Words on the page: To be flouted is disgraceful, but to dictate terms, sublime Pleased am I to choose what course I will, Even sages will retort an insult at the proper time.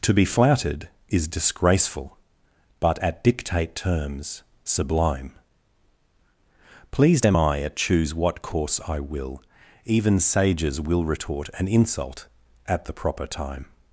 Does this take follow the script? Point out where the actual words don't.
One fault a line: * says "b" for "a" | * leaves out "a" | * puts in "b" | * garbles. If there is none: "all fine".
* says "at" for "to"
* says "at" for "to"